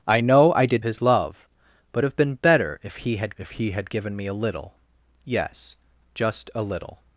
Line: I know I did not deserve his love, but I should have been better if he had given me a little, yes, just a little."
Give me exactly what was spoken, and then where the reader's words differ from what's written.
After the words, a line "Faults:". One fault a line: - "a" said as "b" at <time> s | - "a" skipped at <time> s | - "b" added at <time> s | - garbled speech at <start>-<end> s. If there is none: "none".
I know I did his love, but have been better if he had if he had given me a little, yes, just a little."
Faults:
- "not deserve" skipped at 0.8 s
- "I should" skipped at 2.0 s
- "if he had" added at 3.4 s